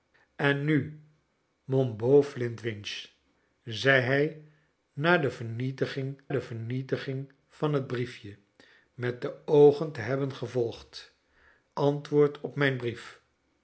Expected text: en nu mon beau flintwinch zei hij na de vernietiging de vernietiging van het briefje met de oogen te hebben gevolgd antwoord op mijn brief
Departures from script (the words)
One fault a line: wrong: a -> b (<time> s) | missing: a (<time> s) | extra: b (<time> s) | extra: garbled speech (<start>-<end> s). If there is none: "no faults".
no faults